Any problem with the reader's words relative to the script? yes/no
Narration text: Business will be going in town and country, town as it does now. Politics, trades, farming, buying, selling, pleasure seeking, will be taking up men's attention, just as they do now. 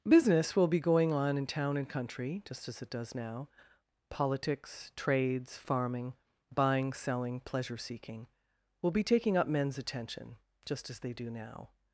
yes